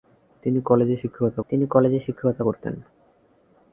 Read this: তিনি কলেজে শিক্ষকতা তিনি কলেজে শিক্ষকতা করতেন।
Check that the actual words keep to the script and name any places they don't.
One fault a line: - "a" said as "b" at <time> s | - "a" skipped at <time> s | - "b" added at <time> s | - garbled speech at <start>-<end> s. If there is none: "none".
none